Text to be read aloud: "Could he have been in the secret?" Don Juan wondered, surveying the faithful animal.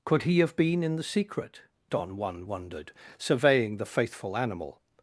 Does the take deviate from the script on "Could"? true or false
false